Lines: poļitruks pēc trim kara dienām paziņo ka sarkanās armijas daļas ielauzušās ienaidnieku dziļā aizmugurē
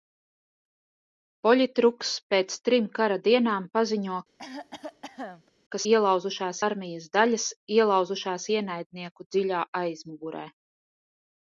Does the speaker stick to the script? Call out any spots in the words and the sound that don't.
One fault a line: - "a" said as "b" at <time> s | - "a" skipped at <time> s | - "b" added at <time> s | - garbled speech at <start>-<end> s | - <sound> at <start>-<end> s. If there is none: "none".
- cough at 4.4-5.5 s
- "sarkanās" said as "ielauzušās" at 5.9 s